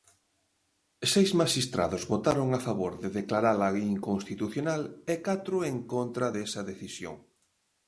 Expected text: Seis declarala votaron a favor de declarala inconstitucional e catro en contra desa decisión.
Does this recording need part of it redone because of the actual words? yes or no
yes